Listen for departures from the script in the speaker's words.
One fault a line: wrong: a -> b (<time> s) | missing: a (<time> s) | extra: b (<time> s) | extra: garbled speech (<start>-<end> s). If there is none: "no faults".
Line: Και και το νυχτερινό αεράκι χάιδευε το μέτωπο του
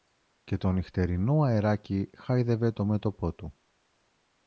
missing: και (0.6 s)